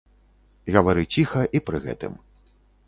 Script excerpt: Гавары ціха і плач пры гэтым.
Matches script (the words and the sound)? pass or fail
fail